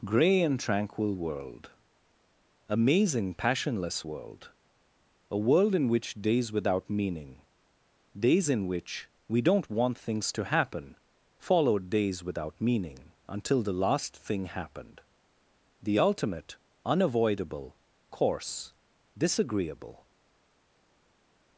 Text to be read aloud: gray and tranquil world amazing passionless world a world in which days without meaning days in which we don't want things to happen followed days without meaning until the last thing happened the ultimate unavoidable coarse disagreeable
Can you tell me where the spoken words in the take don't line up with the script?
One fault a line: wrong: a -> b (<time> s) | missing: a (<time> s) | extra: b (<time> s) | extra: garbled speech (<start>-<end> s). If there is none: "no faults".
no faults